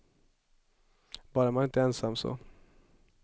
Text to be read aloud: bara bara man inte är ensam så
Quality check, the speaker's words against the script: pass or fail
fail